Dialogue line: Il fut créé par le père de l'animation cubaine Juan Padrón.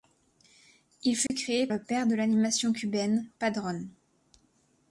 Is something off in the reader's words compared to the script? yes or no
yes